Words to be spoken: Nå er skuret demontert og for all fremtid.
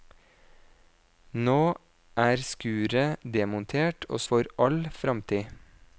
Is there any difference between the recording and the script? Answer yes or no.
no